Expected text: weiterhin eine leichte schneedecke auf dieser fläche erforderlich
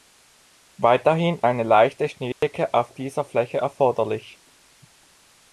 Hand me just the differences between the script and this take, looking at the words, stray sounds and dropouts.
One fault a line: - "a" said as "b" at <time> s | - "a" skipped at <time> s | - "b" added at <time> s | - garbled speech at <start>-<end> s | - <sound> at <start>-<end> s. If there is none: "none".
- dropout at 2.3-2.4 s